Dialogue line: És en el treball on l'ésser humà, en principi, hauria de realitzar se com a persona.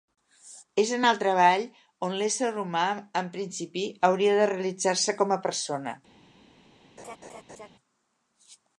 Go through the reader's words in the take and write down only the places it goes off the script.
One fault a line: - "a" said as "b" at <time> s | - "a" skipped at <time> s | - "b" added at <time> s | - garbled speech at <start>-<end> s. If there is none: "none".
none